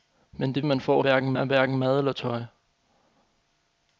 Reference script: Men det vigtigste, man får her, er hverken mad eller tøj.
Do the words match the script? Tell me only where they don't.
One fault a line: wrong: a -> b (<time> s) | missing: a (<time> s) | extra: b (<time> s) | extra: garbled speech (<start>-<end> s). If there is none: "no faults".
missing: vigtigste (0.7 s)
wrong: her -> hverken (1.0 s)